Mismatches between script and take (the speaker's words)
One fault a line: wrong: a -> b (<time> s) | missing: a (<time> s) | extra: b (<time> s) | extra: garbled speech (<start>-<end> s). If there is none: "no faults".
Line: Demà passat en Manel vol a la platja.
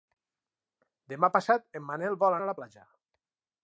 no faults